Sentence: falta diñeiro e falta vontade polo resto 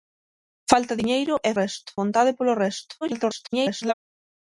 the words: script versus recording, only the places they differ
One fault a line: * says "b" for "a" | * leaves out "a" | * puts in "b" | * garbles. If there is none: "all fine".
* says "resto" for "falta"
* garbles